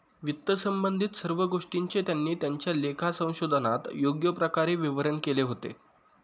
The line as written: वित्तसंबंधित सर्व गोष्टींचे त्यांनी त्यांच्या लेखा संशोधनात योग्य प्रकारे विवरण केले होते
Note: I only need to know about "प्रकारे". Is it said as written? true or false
true